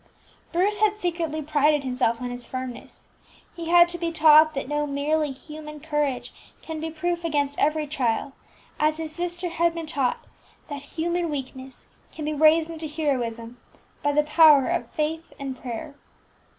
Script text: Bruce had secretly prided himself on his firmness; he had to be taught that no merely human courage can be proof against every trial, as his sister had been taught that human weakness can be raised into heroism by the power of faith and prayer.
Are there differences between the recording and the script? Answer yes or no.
no